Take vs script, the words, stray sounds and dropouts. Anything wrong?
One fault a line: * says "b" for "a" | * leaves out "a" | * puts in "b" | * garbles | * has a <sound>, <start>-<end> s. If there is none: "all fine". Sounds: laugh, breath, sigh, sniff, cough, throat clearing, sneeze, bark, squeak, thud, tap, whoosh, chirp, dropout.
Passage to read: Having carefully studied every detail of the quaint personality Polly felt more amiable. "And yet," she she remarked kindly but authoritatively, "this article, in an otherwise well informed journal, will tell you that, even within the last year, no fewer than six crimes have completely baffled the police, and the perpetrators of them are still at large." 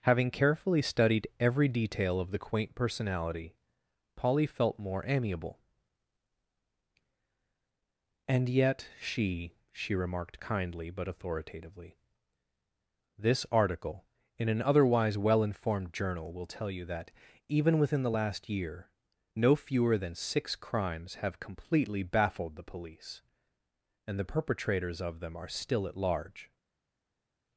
all fine